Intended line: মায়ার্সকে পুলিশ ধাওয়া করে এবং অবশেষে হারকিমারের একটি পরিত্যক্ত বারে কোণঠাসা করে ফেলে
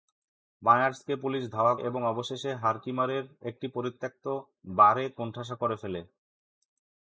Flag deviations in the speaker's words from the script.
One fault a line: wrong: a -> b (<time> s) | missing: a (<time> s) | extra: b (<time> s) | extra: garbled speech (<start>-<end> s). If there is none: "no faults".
missing: করে (1.8 s)